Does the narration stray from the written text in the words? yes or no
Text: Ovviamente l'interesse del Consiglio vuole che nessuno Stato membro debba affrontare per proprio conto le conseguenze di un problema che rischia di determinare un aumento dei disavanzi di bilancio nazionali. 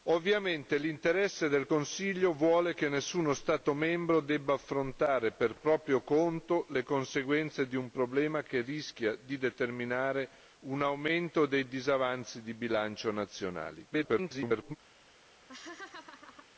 yes